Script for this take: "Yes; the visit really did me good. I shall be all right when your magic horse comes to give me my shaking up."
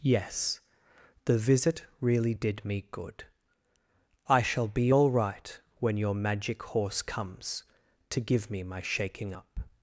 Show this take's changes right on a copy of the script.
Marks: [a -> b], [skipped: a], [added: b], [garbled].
"Yes; the visit really did me good. I shall be all right when your magic horse comes to give me my shaking up."